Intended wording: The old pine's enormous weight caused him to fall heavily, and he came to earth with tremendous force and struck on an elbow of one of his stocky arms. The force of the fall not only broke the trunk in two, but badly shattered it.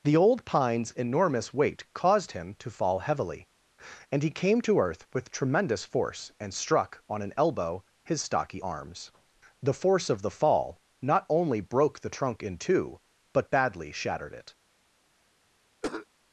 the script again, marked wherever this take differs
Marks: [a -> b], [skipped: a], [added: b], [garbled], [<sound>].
The old pine's enormous weight caused him to fall heavily, and he came to earth with tremendous force and struck on an elbow [skipped: of one of] his stocky arms. The force of the fall not only broke the trunk in two, but badly shattered it. [cough]